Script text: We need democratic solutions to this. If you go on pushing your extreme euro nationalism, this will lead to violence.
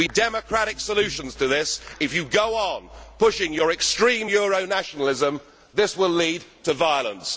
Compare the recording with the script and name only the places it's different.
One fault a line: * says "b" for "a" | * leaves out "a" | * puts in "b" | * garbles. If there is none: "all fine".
* leaves out "need"